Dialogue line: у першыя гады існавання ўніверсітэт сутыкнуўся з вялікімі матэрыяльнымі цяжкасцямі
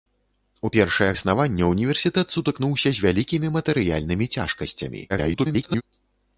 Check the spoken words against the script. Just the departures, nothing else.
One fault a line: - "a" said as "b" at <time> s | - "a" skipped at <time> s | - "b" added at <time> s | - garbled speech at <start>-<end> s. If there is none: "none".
- "гады" skipped at 1.2 s
- garbled speech at 5.1-5.8 s